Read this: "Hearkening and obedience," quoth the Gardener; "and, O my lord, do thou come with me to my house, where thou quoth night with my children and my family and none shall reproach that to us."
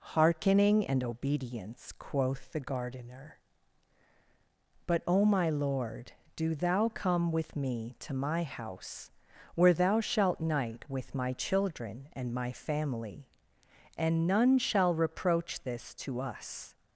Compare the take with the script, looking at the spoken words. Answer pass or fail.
fail